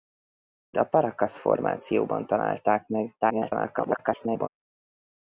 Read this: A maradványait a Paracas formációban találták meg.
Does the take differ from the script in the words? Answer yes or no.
yes